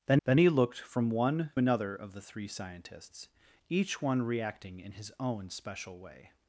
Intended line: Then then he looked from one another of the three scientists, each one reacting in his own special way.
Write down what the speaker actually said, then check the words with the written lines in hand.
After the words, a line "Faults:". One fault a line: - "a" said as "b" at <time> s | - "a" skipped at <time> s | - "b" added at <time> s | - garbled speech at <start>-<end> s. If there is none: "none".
Then then he looked from one another of the three scientists, each one reacting in his own special way.
Faults:
none